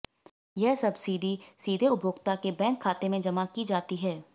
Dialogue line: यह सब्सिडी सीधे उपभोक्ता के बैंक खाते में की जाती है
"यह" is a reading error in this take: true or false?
false